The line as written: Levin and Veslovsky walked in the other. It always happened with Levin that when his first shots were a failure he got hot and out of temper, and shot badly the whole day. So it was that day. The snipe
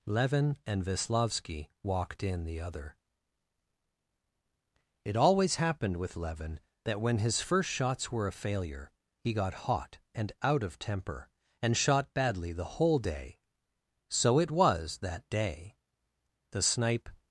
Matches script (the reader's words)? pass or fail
pass